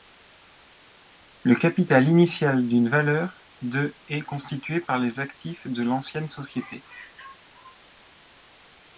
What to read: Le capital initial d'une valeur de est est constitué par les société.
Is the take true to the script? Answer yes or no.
no